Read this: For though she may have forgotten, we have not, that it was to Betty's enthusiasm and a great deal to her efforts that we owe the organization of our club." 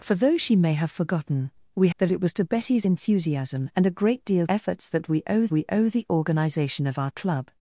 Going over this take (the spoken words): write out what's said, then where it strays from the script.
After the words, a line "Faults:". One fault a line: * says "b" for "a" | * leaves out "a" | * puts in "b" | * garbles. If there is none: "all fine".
For though she may have forgotten, we that it was to Betty's enthusiasm and a great deal efforts that we owe we owe the organization of our club."
Faults:
* leaves out "have not"
* says "efforts that we owe" for "to her efforts that"